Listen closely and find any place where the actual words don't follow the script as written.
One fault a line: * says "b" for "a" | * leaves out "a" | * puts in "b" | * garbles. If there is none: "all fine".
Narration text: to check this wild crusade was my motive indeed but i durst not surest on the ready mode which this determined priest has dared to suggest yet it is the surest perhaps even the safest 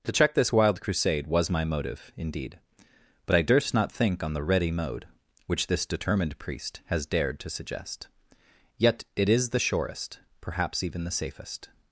* says "think" for "surest"